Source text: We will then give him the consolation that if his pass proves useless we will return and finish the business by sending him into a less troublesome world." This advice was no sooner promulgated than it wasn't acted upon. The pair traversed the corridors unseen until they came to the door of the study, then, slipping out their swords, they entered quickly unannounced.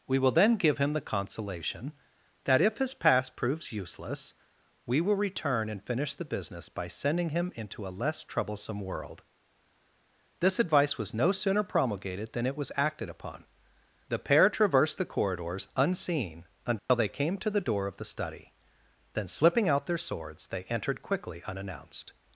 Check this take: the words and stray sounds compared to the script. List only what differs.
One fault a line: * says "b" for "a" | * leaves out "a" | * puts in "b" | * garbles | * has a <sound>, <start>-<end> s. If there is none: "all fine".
* says "was" for "wasn't"
* has a dropout, 16.8-16.9 s